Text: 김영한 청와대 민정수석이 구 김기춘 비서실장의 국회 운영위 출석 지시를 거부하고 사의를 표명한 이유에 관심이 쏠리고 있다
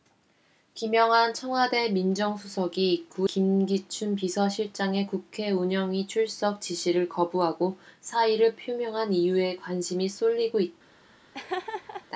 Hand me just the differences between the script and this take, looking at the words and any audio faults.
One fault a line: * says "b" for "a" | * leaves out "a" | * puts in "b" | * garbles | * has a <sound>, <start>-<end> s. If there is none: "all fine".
* has a laugh, 11.3-12.1 s